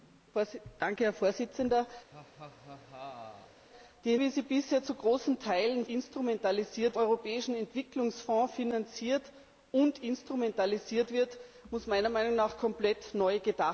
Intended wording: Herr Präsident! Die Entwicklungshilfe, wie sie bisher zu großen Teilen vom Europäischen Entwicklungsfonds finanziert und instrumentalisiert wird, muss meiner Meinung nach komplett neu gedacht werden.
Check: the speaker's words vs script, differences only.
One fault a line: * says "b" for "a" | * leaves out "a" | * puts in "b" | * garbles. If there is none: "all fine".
* leaves out "Entwicklungshilfe"
* says "instrumentalisiert" for "vom"